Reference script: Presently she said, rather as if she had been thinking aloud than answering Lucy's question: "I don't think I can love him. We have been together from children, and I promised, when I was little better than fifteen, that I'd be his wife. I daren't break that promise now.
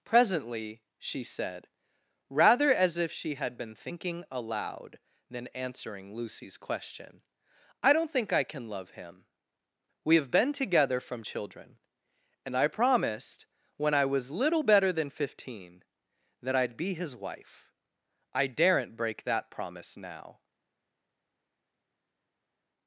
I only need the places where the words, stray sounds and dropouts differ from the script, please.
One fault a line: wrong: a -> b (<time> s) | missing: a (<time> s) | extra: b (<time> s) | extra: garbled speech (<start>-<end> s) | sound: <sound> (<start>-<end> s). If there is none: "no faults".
no faults